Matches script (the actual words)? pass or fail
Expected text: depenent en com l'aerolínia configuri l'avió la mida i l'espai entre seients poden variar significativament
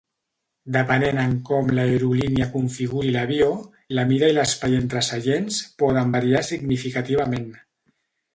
pass